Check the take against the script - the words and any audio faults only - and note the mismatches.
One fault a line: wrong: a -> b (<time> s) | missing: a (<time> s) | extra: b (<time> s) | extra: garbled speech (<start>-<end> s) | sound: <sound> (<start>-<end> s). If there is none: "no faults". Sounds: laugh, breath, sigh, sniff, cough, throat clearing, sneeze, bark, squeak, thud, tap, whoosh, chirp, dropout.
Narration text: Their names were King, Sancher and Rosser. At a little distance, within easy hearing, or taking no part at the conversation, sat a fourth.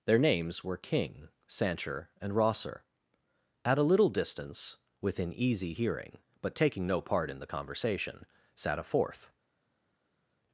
wrong: or -> but (6.4 s)
wrong: at -> in (7.3 s)